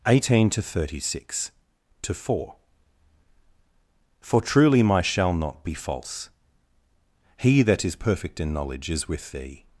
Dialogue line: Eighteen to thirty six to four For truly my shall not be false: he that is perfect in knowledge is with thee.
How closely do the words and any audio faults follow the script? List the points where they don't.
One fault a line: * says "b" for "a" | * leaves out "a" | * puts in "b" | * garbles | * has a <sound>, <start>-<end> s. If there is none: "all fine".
all fine